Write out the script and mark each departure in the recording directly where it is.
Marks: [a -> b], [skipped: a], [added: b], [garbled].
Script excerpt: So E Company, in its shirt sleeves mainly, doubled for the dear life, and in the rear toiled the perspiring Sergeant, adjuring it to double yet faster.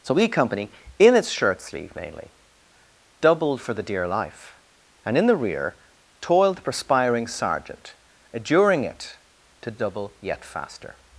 So E Company, in its shirt [sleeves -> sleeve] mainly, doubled for the dear life, and in the rear toiled the perspiring Sergeant, adjuring it to double yet faster.